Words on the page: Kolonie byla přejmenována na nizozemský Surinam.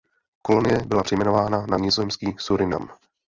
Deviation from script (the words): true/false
false